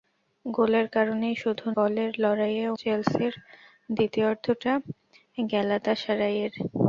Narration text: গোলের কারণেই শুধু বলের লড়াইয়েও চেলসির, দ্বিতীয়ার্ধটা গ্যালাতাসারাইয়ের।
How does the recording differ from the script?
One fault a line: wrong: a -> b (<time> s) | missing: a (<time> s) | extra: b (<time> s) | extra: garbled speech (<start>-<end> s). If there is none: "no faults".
no faults